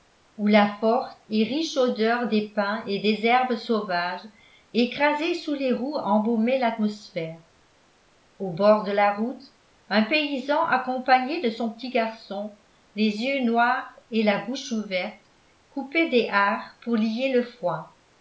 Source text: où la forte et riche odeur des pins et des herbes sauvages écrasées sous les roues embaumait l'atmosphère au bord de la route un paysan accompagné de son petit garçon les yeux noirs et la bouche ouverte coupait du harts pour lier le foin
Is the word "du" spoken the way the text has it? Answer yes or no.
no